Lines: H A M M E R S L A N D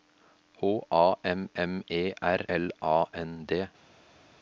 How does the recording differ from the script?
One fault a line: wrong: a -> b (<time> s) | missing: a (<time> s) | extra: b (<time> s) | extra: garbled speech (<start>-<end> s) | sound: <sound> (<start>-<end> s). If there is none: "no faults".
missing: S (2.4 s)